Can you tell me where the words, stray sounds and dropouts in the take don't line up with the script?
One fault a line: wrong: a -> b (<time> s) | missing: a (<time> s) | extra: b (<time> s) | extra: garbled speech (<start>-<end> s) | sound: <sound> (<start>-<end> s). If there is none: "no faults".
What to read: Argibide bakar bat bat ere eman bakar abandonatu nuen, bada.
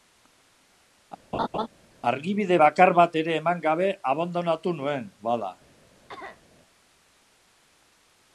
sound: laugh (1.3-1.7 s)
missing: bat (3.2 s)
wrong: bakar -> gabe (3.7 s)
sound: cough (6.1-6.4 s)